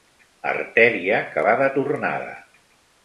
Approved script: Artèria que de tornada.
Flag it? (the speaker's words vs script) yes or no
yes